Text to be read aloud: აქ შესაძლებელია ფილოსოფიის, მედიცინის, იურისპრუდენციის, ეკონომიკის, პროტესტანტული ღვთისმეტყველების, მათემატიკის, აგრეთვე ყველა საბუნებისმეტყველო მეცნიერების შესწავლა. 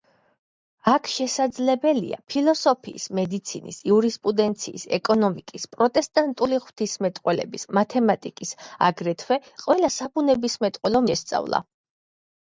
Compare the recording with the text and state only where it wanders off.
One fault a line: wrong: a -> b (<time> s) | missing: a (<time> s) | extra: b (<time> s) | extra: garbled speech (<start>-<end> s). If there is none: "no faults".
missing: მეცნიერების (11.0 s)